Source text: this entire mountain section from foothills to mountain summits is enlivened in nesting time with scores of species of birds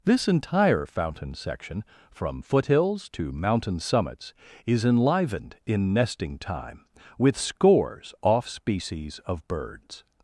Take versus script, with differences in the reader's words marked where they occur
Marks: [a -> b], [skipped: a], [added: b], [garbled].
this entire [mountain -> fountain] section from foothills to mountain summits is enlivened in nesting time with scores [of -> off] species of birds